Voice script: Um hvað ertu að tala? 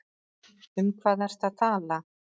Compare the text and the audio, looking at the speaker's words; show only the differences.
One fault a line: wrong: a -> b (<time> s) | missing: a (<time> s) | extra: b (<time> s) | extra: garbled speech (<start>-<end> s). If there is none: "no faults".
no faults